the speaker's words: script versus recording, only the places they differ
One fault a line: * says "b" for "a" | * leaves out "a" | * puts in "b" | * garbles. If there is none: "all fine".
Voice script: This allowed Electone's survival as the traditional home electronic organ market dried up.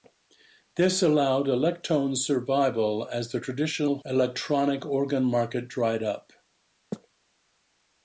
* leaves out "home"